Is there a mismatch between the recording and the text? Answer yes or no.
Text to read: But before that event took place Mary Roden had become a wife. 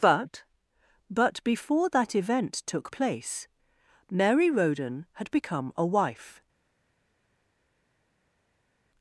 yes